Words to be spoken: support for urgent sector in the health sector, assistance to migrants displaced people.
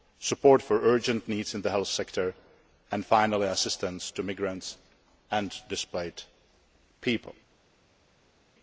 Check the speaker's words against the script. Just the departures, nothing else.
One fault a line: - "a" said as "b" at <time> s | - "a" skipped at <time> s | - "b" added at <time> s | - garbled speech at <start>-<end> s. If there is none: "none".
- "sector" said as "needs" at 1.3 s
- "and finally" added at 2.9 s
- "and" added at 5.3 s